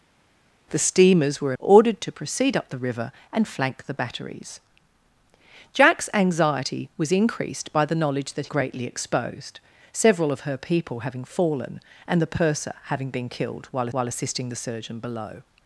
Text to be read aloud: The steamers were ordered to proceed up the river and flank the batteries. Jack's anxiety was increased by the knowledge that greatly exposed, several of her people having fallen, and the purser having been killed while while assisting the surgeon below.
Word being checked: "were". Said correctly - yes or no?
yes